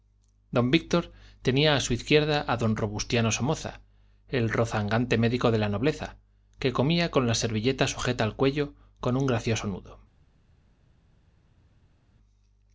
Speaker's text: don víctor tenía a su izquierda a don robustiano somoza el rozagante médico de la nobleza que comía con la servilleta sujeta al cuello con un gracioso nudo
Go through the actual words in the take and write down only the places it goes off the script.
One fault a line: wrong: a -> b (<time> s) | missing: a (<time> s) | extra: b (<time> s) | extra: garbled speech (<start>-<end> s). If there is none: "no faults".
no faults